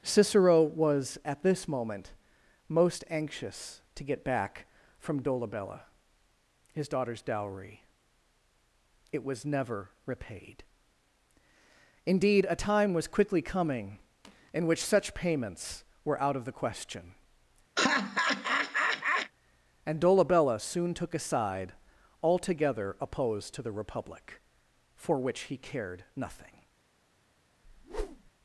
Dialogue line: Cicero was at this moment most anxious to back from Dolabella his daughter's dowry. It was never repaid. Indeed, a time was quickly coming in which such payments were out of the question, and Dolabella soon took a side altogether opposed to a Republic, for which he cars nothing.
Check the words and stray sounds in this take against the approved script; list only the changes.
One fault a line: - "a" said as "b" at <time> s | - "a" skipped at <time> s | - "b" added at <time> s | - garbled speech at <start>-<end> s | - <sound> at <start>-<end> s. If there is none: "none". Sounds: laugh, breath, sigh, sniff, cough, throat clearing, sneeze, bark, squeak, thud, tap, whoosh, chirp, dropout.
- "get" added at 4.0 s
- laugh at 17.8-19.3 s
- "a" said as "the" at 23.6 s
- "cars" said as "cared" at 25.6 s
- whoosh at 27.6-28.3 s